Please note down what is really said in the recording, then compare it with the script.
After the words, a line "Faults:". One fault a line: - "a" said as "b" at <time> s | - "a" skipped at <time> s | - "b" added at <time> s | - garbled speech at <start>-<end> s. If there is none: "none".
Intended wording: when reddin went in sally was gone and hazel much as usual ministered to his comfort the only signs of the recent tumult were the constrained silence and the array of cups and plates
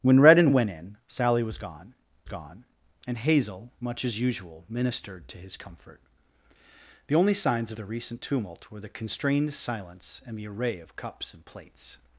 when reddin went in sally was gone gone and hazel much as usual ministered to his comfort the only signs the recent tumult were the constrained silence and the array of cups and plates
Faults:
- "gone" added at 2.3 s
- "of" skipped at 7.7 s